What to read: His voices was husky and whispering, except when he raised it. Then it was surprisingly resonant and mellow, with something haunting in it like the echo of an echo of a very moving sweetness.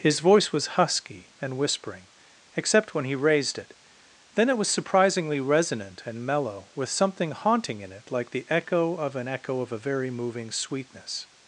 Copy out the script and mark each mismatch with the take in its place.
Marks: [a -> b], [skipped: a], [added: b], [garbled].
His [voices -> voice] was husky and whispering, except when he raised it. Then it was surprisingly resonant and mellow, with something haunting in it like the echo of an echo of a very moving sweetness.